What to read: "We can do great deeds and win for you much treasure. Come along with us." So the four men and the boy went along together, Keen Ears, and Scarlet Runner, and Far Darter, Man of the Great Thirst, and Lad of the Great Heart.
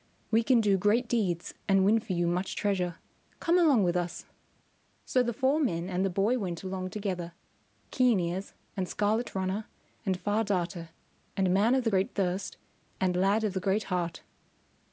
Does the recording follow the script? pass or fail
fail